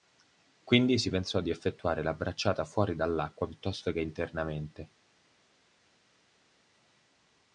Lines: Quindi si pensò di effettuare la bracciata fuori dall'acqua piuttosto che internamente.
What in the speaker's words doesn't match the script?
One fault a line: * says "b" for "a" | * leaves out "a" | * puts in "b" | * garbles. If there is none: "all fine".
all fine